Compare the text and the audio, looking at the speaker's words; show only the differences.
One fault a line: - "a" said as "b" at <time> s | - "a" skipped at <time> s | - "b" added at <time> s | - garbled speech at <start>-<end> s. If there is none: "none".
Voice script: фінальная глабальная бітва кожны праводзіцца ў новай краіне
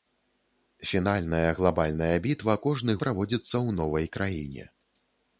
none